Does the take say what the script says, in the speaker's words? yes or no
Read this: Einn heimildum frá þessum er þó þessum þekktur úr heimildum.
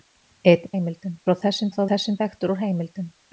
yes